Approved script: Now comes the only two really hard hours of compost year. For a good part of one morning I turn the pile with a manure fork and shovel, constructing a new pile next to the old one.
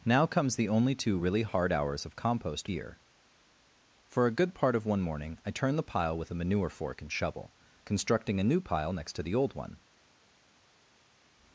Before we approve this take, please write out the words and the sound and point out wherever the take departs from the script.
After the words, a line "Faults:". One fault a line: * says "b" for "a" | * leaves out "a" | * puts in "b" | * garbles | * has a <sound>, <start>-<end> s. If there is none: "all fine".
Now comes the only two really hard hours of compost year. For a good part of one morning I turn the pile with a manure fork and shovel, constructing a new pile next to the old one.
Faults:
all fine